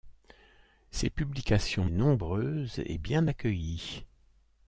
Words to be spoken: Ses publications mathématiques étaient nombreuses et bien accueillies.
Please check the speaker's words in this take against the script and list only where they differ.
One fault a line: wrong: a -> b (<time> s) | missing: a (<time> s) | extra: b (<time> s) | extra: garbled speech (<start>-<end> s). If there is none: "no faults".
missing: mathématiques étaient (1.9 s)